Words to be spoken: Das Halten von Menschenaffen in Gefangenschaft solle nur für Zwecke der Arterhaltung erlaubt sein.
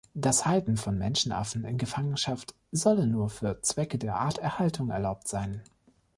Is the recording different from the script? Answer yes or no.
no